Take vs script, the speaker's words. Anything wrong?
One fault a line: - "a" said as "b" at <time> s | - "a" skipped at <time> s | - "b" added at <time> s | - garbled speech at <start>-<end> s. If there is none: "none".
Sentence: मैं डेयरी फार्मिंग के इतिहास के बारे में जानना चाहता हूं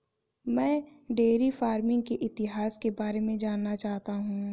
none